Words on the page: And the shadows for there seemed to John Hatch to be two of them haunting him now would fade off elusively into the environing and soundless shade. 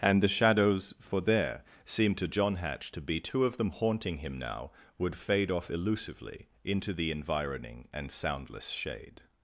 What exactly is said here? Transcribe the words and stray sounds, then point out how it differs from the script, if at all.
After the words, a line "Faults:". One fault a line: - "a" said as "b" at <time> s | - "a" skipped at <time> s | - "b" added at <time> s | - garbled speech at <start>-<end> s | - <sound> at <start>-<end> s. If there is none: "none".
And the shadows for there seemed to John Hatch to be two of them haunting him now would fade off elusively into the environing and soundless shade.
Faults:
none